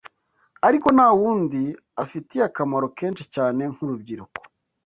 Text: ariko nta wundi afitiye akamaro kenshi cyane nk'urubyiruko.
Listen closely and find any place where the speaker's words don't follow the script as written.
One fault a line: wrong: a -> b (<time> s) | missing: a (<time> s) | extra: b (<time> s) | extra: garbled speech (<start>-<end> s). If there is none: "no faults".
no faults